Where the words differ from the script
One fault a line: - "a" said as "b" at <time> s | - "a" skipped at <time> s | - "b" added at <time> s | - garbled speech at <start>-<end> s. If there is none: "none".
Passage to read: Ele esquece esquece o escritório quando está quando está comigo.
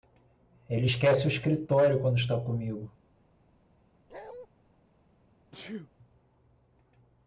- "esquece" skipped at 1.3 s
- "quando está" skipped at 2.4 s